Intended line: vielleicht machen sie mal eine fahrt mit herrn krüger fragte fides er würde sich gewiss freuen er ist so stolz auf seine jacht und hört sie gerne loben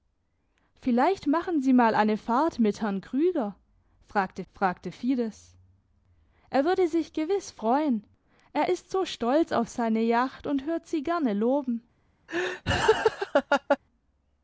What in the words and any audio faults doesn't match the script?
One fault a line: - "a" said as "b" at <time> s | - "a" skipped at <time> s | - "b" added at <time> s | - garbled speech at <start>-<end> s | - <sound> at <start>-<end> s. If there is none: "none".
- "fragte" added at 4.5 s
- laugh at 12.3-13.8 s